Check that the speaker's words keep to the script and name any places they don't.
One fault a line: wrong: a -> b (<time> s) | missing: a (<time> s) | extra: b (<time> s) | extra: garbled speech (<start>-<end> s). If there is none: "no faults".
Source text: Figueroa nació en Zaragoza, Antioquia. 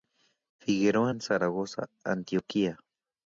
missing: nació (1.1 s)